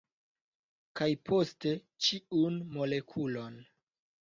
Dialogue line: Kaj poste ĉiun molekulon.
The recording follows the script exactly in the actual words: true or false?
true